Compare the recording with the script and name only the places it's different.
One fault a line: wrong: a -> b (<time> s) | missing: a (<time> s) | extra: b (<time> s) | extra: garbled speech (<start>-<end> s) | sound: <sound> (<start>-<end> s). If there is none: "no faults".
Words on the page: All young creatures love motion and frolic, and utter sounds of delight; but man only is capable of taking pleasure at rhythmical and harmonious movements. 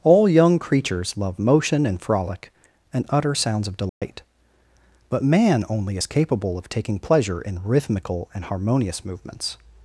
sound: dropout (3.9-4.0 s)
wrong: at -> in (7.4 s)